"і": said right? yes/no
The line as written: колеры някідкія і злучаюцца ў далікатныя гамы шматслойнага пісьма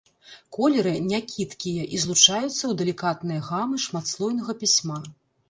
yes